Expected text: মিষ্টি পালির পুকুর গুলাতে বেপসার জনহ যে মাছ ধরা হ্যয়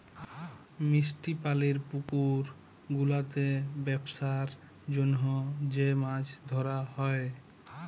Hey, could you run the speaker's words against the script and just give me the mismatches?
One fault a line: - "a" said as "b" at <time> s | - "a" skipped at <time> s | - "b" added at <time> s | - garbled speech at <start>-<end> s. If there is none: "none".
none